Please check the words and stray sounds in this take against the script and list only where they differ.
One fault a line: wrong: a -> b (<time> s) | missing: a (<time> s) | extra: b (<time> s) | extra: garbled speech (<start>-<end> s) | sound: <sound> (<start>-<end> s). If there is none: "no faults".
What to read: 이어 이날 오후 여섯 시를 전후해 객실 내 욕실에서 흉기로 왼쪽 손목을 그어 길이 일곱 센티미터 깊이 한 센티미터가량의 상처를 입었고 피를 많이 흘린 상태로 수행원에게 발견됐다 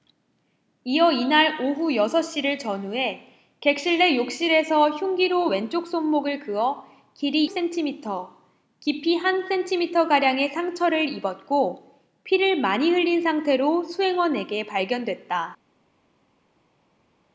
missing: 일곱 (7.4 s)